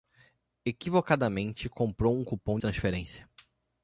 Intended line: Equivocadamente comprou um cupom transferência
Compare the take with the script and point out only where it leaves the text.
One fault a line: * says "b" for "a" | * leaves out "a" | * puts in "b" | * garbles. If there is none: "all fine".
all fine